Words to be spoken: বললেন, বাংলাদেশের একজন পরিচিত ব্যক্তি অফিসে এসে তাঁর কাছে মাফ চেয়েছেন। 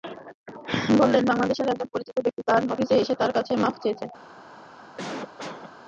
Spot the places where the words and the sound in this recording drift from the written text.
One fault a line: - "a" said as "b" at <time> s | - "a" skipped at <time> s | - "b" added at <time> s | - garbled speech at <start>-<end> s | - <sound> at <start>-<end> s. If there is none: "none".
- "তাঁর" added at 2.5 s
- cough at 5.0-5.7 s